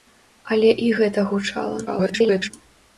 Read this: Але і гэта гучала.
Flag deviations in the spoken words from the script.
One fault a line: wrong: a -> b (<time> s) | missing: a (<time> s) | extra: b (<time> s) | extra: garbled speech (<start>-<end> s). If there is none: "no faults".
extra: garbled speech (1.9-2.5 s)